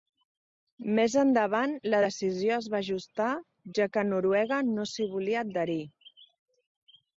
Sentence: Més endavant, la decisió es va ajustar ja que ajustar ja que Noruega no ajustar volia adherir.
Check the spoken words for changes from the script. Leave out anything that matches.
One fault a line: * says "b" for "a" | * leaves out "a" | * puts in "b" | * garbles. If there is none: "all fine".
* leaves out "ajustar ja que"
* says "s'hi" for "ajustar"